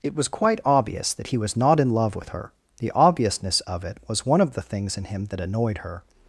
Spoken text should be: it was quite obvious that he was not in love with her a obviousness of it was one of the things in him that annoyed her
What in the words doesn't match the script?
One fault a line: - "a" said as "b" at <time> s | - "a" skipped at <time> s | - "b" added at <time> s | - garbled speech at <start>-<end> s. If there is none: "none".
- "a" said as "the" at 2.8 s